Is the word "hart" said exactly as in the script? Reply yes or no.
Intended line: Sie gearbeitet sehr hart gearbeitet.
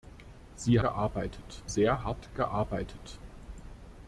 yes